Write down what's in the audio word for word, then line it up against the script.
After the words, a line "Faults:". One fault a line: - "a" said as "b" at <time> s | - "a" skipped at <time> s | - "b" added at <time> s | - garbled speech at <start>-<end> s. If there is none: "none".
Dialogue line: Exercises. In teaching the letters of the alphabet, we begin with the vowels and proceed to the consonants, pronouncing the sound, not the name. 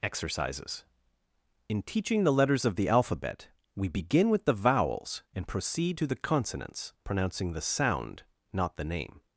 Exercises. In teaching the letters of the alphabet, we begin with the vowels and proceed to the consonants, pronouncing the sound, not the name.
Faults:
none